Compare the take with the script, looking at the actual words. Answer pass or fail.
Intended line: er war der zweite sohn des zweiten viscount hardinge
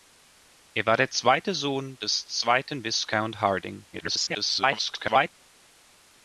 fail